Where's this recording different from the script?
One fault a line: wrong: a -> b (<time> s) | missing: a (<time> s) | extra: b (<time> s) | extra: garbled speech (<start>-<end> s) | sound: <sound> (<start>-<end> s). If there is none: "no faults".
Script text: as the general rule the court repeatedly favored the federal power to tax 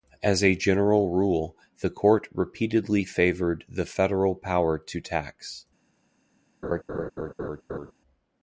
wrong: the -> a (0.4 s)
sound: laugh (6.6-7.9 s)